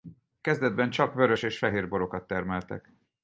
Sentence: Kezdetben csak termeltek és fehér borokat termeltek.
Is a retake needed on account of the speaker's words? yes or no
yes